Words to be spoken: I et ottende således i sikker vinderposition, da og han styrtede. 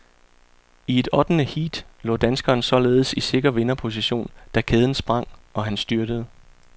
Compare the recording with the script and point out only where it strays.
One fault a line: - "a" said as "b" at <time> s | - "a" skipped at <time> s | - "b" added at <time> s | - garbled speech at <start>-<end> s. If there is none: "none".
- "heat lå danskeren" added at 1.4 s
- "kæden sprang" added at 4.6 s